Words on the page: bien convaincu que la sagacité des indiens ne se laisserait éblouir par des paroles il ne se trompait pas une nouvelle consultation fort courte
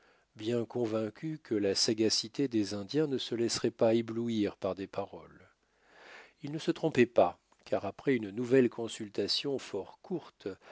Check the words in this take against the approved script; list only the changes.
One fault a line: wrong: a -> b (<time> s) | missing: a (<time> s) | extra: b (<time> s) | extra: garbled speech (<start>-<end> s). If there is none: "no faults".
extra: pas (3.7 s)
extra: car après (7.6 s)